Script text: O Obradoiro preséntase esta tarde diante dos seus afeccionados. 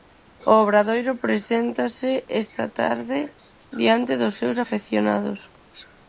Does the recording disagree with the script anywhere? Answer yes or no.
no